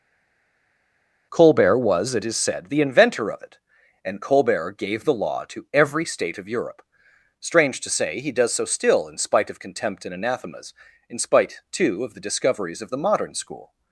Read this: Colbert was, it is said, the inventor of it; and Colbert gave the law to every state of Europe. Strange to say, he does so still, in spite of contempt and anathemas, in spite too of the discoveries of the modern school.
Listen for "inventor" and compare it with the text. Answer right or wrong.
right